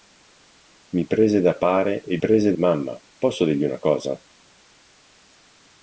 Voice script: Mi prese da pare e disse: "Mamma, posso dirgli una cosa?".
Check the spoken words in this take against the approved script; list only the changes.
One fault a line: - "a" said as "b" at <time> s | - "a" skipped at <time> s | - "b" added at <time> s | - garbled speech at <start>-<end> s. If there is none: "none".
- "disse" said as "prese" at 2.2 s